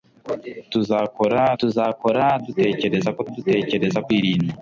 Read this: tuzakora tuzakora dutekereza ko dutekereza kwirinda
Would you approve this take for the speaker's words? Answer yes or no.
yes